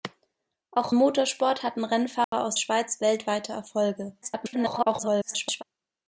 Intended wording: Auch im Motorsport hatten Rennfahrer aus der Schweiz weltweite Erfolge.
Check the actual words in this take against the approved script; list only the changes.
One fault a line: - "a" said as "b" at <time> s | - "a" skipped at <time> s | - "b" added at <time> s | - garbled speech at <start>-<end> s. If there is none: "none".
- "im" skipped at 0.9 s
- "der" skipped at 2.6 s
- garbled speech at 4.2-5.6 s